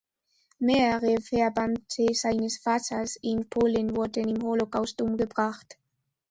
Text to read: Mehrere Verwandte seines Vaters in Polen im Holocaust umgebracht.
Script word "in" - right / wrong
right